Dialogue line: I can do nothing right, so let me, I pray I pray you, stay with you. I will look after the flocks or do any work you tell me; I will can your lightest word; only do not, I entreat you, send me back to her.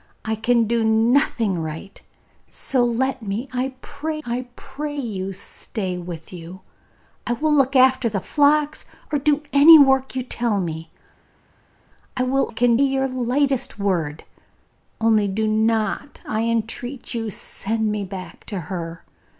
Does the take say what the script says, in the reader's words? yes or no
yes